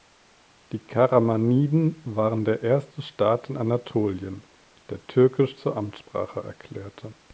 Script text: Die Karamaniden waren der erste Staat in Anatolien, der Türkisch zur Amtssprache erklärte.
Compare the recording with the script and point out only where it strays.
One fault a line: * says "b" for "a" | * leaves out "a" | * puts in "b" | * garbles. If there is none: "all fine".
all fine